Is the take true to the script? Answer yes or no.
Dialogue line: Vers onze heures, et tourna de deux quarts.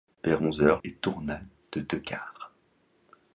yes